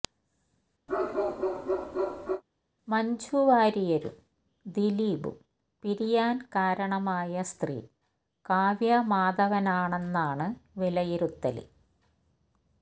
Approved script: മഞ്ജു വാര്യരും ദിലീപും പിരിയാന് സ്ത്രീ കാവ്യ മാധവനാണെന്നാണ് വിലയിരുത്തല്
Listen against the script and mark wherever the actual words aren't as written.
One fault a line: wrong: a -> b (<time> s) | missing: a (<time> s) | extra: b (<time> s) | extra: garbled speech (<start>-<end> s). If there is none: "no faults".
extra: കാരണമായ (6.5 s)